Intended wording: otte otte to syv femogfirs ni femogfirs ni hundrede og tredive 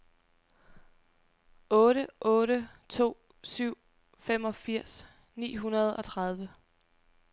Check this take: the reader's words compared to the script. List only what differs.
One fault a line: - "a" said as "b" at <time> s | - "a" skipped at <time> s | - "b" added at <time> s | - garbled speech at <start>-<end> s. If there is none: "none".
- "femogfirs ni" skipped at 5.6 s